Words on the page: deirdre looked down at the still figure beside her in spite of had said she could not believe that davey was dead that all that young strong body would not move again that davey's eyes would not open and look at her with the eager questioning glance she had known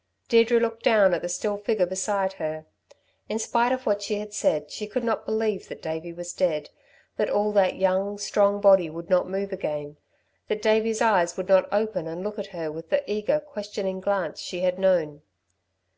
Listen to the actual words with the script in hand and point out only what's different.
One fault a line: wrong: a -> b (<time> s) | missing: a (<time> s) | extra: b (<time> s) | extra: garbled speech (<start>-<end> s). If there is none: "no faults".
extra: what she (3.9 s)